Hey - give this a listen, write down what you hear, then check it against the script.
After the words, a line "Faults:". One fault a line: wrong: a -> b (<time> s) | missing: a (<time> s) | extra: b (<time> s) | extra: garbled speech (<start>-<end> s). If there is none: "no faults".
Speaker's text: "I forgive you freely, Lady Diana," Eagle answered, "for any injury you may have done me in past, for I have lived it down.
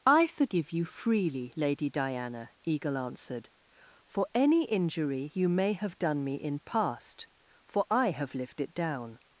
"I forgive you freely, Lady Diana," Eagle answered, "for any injury you may have done me in past, for I have lived it down.
Faults:
no faults